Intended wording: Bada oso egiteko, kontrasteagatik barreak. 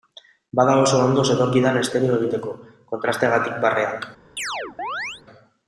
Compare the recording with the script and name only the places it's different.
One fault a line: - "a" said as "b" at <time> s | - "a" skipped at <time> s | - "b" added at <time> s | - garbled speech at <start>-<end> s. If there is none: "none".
- "ondo zetorkidan estereo" added at 1.1 s